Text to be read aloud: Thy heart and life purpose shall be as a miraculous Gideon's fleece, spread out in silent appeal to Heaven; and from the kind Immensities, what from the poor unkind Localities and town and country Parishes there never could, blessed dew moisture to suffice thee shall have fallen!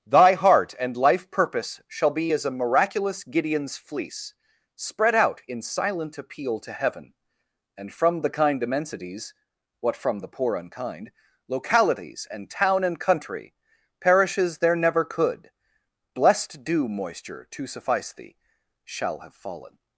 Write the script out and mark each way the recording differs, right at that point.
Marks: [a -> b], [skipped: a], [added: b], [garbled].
Thy heart and life purpose shall be as a miraculous Gideon's fleece, spread out in silent appeal to Heaven; and from the kind Immensities, what from the poor unkind Localities and town and country Parishes there never could, blessed dew moisture to suffice thee shall have fallen!